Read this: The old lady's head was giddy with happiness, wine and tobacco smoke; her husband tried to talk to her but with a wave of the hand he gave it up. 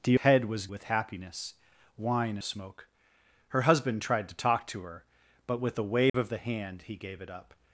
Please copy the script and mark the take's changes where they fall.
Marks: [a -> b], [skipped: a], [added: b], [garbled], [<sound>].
The [skipped: old lady's] head was [skipped: giddy] with happiness, wine [skipped: and tobacco] smoke; her husband tried to talk to her but with a wave [dropout] of the hand he gave it up.